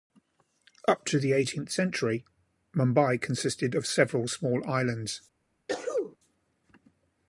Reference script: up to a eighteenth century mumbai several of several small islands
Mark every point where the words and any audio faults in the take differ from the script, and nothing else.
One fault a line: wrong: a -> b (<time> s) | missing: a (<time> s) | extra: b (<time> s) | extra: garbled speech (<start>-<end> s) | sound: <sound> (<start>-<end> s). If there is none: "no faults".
wrong: a -> the (1.2 s)
wrong: several -> consisted (3.2 s)
sound: sneeze (5.7-6.2 s)